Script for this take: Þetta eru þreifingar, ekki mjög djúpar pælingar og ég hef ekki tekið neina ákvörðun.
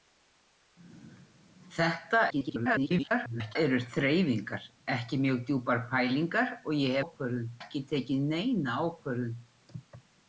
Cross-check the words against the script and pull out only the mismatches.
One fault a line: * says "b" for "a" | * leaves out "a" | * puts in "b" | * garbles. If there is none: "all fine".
* garbles
* says "ákvörðun" for "hef"